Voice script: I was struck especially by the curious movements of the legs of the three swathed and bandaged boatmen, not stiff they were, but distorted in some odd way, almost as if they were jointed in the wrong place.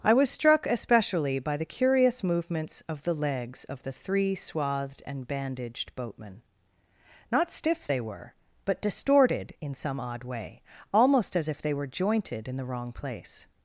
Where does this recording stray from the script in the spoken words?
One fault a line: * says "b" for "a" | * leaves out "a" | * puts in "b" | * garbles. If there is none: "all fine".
all fine